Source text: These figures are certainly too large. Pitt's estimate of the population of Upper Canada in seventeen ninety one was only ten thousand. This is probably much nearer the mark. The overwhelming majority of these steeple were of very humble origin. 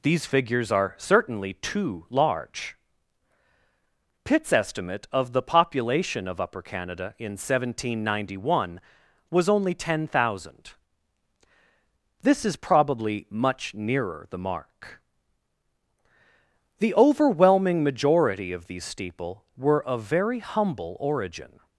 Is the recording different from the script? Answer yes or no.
no